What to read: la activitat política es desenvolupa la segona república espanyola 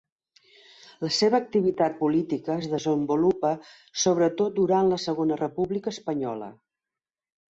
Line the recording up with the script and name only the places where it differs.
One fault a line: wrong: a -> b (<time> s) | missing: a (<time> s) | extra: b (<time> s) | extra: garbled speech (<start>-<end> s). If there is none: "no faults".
extra: seva (1.2 s)
extra: sobretot durant (4.0 s)